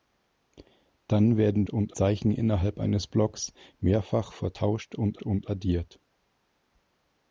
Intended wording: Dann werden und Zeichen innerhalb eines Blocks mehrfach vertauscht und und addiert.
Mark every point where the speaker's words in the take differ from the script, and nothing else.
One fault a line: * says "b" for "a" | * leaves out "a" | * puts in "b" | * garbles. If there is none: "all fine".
all fine